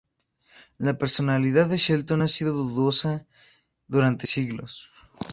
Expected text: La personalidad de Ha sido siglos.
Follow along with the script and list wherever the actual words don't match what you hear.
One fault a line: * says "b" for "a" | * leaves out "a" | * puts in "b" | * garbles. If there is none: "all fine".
* puts in "Shelton"
* puts in "dudosa durante"